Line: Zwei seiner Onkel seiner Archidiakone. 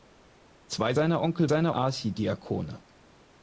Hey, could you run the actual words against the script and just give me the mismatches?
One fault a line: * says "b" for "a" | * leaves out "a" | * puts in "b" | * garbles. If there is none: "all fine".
all fine